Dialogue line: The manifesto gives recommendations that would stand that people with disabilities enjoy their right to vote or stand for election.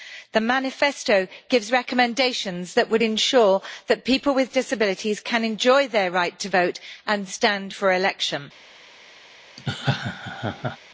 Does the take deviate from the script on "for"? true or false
false